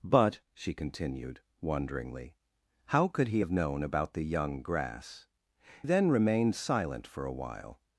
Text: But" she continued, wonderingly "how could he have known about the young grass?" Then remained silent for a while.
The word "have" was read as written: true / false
true